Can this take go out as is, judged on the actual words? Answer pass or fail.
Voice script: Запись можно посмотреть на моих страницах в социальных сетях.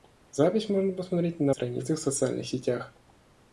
fail